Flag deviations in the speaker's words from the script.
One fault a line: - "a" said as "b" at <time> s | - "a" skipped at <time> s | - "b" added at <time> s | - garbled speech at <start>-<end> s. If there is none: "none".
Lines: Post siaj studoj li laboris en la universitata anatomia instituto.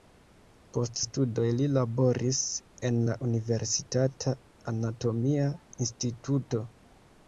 - "siaj" skipped at 1.0 s